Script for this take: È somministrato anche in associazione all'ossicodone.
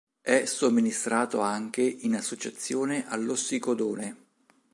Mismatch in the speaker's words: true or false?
false